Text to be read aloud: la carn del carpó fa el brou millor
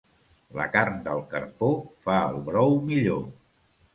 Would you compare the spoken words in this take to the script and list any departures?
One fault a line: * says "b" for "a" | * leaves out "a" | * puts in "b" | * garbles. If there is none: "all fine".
all fine